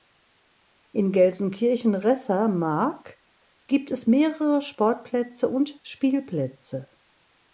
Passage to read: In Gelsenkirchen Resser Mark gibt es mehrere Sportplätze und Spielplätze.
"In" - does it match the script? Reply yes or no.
yes